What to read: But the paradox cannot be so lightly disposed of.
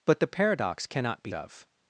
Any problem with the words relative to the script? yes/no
yes